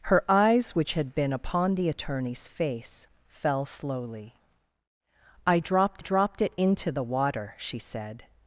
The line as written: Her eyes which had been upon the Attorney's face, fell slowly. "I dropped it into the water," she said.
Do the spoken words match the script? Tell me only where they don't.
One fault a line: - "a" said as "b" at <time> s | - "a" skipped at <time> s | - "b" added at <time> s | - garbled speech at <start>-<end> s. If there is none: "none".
- "dropped" added at 6.0 s